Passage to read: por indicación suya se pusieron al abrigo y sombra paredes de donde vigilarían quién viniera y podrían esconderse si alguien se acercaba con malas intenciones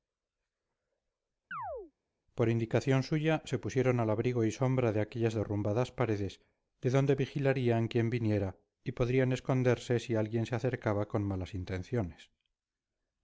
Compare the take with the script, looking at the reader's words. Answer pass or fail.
fail